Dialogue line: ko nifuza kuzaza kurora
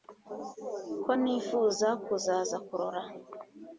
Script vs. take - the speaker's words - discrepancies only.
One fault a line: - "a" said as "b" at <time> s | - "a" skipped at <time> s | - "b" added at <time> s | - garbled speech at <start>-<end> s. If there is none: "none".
none